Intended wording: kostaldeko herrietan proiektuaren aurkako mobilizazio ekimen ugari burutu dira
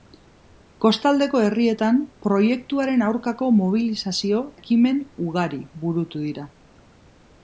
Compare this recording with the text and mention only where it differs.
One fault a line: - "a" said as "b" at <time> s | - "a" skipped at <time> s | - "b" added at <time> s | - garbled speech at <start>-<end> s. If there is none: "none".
none